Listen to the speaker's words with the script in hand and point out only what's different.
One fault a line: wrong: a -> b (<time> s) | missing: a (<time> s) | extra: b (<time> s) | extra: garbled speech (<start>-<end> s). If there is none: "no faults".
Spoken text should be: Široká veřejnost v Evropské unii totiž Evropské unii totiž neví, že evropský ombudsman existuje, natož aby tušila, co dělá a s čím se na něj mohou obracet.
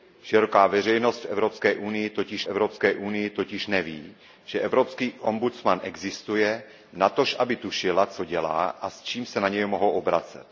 no faults